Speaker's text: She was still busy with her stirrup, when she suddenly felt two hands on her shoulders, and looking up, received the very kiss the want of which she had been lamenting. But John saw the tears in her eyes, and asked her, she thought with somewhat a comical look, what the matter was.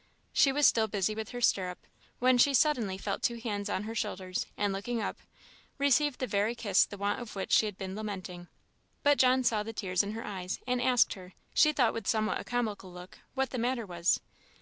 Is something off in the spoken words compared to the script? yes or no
no